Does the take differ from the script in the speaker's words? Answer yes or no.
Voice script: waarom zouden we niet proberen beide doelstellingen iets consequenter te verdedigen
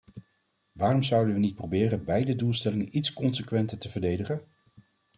no